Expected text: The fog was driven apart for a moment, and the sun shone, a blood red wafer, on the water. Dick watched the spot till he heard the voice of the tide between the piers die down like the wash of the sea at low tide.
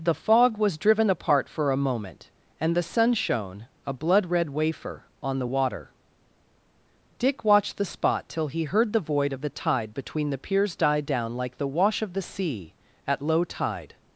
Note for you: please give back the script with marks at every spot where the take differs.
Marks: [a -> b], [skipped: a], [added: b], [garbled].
The fog was driven apart for a moment, and the sun shone, a blood red wafer, on the water. Dick watched the spot till he heard the [voice -> void] of the tide between the piers die down like the wash of the sea at low tide.